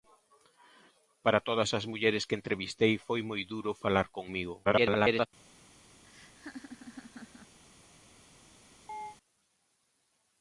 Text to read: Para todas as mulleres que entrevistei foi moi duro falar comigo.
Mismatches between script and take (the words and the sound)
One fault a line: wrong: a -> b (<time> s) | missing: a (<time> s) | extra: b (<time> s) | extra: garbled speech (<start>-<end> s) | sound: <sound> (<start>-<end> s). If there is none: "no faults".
extra: garbled speech (4.6-5.3 s)
sound: laugh (6.0-7.6 s)
sound: chirp (8.9-9.2 s)